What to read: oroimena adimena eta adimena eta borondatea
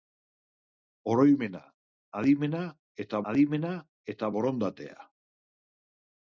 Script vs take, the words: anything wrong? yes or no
no